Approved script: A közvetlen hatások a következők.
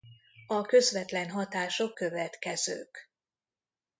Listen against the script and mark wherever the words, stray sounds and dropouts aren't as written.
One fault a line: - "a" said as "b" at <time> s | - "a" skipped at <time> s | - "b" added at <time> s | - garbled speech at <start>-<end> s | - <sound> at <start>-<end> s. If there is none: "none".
- "a" skipped at 1.9 s